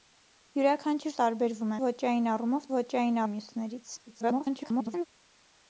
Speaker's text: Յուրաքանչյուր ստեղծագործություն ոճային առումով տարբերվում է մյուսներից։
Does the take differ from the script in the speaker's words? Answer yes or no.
yes